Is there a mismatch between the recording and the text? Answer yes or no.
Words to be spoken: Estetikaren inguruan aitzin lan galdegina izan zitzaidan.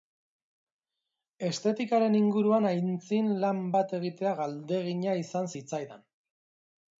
yes